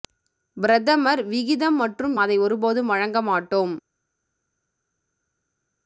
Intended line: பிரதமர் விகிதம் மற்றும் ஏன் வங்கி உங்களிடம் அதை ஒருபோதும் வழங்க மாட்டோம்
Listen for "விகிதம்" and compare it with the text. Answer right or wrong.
right